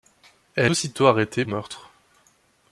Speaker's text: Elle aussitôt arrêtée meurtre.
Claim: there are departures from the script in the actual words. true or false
false